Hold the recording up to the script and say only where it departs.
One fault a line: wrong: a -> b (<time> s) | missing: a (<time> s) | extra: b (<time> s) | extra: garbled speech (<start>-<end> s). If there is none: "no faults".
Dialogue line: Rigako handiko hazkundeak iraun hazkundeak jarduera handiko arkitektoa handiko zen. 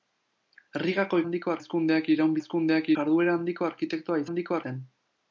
no faults